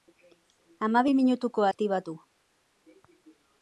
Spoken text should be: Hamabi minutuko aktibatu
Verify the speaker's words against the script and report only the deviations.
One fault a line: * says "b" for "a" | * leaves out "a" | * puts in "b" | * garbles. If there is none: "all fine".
all fine